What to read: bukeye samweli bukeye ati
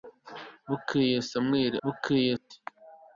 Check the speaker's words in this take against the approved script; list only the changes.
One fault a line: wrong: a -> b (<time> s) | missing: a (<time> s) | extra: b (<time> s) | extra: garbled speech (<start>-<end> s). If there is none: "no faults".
no faults